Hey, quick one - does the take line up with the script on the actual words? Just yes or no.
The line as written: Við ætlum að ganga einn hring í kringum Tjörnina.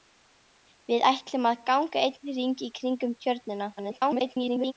no